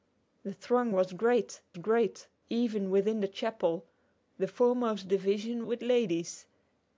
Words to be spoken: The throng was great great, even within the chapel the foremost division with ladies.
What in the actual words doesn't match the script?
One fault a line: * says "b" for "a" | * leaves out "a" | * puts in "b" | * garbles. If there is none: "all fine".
all fine